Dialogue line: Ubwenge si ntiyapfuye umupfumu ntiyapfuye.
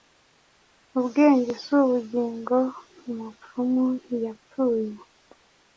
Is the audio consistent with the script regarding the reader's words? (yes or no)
no